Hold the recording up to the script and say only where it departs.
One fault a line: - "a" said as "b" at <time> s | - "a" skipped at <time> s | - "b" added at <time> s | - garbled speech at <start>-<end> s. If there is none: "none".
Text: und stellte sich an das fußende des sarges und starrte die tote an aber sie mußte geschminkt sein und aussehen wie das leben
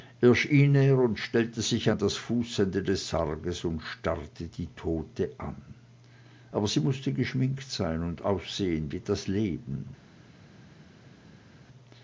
none